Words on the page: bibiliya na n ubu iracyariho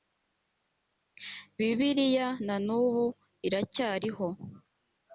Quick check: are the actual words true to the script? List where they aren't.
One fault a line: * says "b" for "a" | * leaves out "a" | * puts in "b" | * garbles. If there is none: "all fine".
all fine